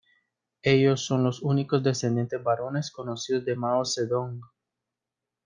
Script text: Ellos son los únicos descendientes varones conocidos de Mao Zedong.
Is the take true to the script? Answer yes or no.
yes